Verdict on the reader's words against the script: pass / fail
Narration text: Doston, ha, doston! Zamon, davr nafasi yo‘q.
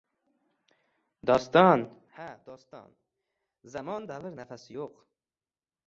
pass